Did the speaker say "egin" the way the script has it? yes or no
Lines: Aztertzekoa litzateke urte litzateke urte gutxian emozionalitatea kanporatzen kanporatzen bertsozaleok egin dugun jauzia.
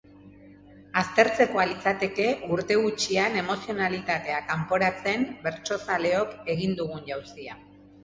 yes